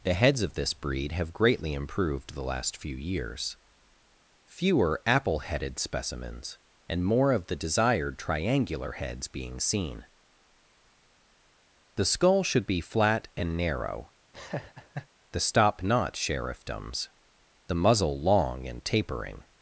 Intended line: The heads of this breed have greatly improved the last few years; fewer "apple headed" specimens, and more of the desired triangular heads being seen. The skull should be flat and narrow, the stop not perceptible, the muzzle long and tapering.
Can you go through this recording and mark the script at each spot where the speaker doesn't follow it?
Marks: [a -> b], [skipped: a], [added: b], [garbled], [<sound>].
The heads of this breed have greatly improved the last few years; fewer "apple headed" specimens, and more of the desired triangular heads being seen. The skull should be flat and narrow, [laugh] the stop not [perceptible, -> sheriffdoms] the muzzle long and tapering.